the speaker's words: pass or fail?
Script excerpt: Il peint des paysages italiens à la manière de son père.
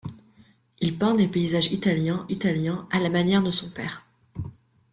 fail